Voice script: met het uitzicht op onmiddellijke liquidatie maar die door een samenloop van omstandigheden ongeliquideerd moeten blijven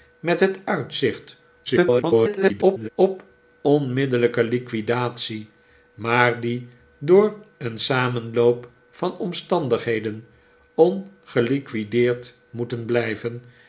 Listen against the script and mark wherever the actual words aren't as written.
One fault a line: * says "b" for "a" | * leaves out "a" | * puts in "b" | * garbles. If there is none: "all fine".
* garbles